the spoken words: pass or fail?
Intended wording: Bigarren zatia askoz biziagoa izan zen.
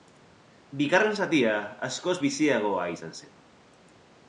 pass